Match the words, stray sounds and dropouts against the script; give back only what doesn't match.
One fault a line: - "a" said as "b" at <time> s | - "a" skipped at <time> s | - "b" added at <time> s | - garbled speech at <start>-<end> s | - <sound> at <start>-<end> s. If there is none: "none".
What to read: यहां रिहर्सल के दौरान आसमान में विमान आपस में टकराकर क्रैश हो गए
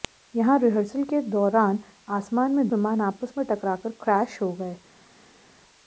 none